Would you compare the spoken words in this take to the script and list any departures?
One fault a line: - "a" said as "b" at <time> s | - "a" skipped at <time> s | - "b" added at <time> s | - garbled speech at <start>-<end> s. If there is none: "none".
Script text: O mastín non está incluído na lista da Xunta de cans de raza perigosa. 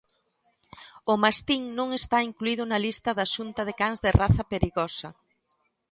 none